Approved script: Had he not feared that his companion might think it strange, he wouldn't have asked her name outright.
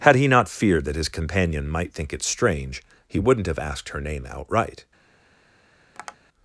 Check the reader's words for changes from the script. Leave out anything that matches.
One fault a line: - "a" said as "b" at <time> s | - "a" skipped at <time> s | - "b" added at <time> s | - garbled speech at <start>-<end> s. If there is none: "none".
none